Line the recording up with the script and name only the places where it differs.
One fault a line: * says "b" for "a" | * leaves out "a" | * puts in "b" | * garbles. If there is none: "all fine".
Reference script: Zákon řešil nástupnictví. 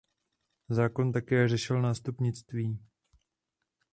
* puts in "také"